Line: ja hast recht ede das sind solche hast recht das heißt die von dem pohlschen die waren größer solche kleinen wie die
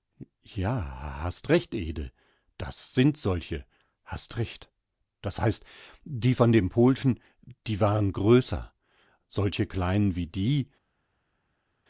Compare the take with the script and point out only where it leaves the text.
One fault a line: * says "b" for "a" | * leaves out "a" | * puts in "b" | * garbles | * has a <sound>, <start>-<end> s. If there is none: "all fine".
all fine